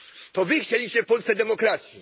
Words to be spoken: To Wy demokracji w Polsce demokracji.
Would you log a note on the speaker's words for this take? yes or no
yes